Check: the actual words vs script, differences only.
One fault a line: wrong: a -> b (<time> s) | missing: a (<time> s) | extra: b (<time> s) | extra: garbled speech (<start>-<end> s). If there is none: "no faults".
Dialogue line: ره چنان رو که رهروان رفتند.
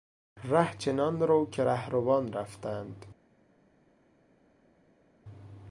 no faults